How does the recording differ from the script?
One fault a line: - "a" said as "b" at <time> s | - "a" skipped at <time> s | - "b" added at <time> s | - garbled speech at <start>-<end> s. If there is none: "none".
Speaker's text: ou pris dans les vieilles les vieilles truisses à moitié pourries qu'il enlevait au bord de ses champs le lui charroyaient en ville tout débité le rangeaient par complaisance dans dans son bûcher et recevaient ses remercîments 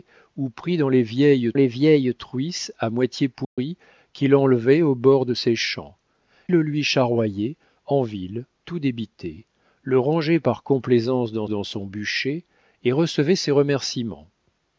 none